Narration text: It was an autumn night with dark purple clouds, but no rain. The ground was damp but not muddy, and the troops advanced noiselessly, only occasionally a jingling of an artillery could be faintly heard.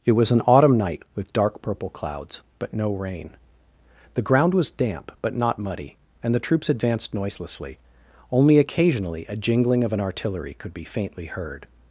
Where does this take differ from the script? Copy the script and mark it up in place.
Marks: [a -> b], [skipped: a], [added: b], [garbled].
It was an autumn night with dark purple clouds, but no rain. The ground was damp but not muddy, and the troops advanced noiselessly, only occasionally a jingling of an artillery could be faintly heard.